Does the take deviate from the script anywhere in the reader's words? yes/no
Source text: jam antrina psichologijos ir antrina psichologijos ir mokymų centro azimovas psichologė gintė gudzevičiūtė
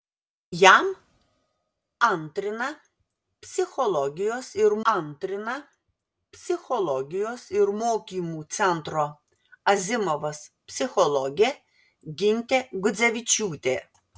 no